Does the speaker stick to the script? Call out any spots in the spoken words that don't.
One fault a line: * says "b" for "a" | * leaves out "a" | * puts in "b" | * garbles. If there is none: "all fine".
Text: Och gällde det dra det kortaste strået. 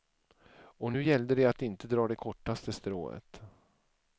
* puts in "nu"
* puts in "att inte"